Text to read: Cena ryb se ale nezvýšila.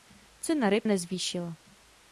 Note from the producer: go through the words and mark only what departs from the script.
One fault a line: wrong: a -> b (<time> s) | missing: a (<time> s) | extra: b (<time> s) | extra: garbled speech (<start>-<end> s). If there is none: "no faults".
missing: se ale (0.9 s)